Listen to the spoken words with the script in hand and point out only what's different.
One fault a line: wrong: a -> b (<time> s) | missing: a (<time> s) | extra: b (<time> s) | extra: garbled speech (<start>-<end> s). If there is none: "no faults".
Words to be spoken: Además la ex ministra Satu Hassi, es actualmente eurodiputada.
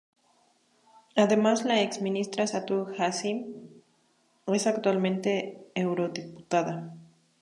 no faults